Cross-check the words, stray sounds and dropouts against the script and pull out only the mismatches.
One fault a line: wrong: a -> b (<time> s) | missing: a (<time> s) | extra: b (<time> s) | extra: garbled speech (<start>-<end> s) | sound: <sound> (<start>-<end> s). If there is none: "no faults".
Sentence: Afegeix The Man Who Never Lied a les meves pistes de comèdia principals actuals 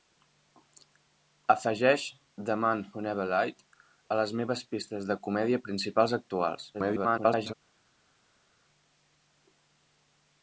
extra: garbled speech (6.7-7.5 s)